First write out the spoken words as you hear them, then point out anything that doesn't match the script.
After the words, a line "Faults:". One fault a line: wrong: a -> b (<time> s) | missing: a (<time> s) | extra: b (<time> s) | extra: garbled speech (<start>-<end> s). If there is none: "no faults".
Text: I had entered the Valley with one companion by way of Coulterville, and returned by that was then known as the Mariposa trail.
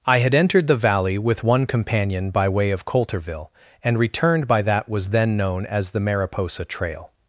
I had entered the Valley with one companion by way of Coulterville, and returned by that was then known as the Mariposa trail.
Faults:
no faults